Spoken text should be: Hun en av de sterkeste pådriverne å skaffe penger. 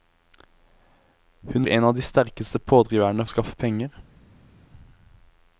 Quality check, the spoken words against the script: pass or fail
pass